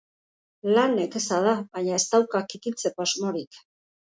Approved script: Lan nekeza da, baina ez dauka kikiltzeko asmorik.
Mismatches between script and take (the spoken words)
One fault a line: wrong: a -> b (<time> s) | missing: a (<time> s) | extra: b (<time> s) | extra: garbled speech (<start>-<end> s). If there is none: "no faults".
no faults